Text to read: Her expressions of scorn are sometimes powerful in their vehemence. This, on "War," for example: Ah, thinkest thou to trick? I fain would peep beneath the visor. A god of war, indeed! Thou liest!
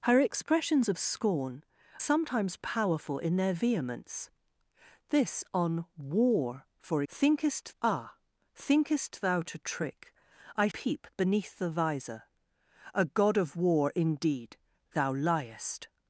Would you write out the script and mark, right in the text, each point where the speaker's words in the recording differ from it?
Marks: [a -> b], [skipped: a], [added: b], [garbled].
Her expressions of scorn [skipped: are] sometimes powerful in their vehemence. This, on "War," for [example: -> thinkest] Ah, thinkest thou to trick? I [skipped: fain would] peep beneath the visor. A god of war, indeed! Thou liest!